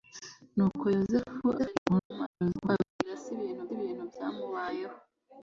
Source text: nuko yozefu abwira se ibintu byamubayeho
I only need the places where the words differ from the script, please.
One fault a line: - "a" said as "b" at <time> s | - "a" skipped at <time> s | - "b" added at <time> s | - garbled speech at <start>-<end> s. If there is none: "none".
- garbled speech at 1.6-2.7 s
- "ibintu" added at 3.8 s